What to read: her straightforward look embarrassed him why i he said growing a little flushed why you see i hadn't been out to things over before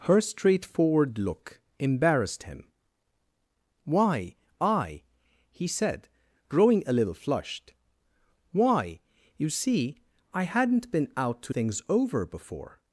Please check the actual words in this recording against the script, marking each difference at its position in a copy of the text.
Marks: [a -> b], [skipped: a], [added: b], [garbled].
her straightforward look embarrassed him why i he said growing a little flushed why you see i hadn't been out to things over before